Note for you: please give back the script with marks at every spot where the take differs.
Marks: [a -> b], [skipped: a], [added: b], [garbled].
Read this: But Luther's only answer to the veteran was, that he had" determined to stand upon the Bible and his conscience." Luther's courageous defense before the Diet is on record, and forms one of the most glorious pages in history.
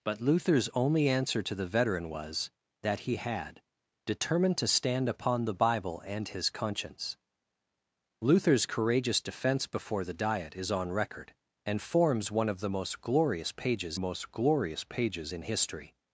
But Luther's only answer to the veteran was, that he had" determined to stand upon the Bible and his conscience." Luther's courageous defense before the Diet is on record, and forms one of the most glorious pages [added: most glorious pages] in history.